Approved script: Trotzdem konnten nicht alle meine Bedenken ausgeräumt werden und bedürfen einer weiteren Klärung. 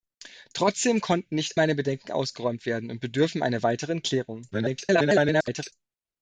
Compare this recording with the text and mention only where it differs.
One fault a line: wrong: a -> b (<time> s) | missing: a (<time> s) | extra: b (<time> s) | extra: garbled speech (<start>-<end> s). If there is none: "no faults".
missing: alle (1.6 s)
extra: garbled speech (4.5-5.7 s)